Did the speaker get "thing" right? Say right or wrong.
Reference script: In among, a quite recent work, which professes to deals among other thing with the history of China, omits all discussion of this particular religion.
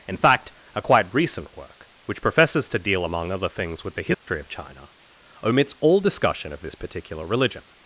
wrong